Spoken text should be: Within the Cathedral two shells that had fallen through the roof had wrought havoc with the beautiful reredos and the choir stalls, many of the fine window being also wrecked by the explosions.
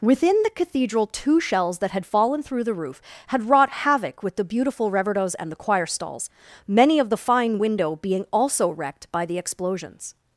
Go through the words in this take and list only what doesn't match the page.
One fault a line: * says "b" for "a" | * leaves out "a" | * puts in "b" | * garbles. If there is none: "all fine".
all fine